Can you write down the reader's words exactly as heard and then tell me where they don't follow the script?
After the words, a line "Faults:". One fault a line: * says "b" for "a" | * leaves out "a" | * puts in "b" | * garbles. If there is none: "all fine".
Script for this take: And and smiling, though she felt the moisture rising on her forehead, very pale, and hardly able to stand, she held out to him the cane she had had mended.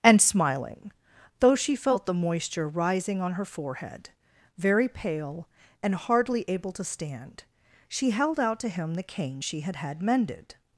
And smiling, though she felt the moisture rising on her forehead, very pale, and hardly able to stand, she held out to him the cane she had had mended.
Faults:
* leaves out "and"